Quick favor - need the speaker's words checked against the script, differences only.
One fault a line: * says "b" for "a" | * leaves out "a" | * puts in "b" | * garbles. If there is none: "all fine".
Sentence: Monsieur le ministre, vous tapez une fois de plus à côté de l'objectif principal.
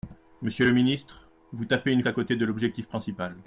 * leaves out "fois de plus"